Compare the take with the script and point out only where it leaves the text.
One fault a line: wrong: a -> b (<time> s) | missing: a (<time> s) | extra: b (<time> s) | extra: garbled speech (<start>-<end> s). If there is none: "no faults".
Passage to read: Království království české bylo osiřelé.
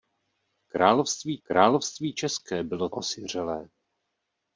no faults